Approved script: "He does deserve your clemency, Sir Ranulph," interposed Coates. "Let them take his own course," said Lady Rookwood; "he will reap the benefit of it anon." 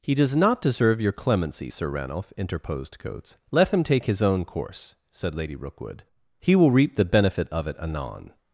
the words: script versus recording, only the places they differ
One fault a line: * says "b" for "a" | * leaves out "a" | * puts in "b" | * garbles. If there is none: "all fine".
* puts in "not"
* says "him" for "them"